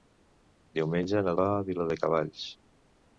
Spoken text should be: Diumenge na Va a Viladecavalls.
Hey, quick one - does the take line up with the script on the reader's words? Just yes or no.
yes